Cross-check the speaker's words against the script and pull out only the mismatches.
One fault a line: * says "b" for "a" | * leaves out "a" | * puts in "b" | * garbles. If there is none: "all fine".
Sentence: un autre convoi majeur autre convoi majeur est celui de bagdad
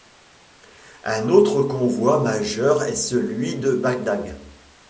* leaves out "autre convoi majeur"